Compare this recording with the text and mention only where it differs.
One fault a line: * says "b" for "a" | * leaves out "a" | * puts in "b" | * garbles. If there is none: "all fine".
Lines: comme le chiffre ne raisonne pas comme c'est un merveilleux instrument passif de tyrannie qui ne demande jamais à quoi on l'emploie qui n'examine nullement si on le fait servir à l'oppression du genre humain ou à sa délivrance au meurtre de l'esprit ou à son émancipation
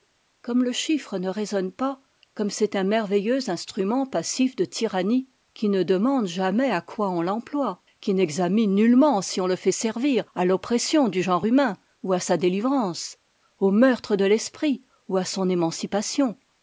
all fine